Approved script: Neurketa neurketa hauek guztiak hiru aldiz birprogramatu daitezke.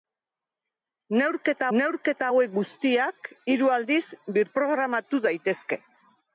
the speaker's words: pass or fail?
pass